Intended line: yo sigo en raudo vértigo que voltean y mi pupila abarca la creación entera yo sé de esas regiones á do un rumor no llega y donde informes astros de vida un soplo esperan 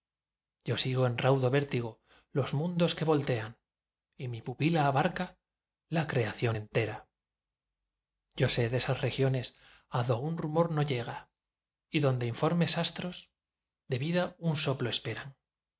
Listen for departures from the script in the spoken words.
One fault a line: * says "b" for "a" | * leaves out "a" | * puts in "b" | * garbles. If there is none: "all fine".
* puts in "los mundos"